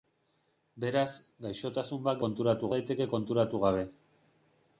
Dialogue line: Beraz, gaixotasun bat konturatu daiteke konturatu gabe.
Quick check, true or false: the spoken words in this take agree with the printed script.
true